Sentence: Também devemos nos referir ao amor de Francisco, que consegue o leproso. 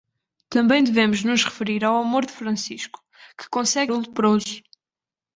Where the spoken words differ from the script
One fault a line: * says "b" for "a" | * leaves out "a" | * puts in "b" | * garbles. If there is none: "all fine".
all fine